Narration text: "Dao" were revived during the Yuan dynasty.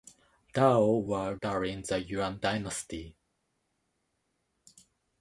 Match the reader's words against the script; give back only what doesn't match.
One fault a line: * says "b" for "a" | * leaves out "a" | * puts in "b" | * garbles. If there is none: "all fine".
* leaves out "revived"